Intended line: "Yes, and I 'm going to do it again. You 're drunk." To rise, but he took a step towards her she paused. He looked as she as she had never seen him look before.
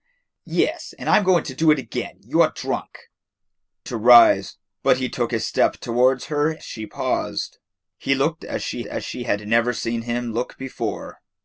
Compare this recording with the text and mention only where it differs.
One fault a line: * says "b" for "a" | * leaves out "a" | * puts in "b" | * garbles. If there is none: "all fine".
all fine